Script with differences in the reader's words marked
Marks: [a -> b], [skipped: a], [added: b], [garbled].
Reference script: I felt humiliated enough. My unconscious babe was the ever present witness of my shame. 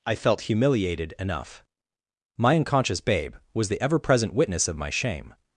I felt humiliated enough. My unconscious babe was the ever present witness of my shame.